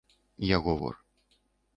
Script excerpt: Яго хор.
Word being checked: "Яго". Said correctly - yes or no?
yes